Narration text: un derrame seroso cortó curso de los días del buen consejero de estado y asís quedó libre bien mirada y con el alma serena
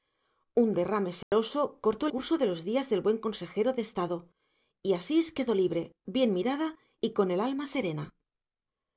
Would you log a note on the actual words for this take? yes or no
no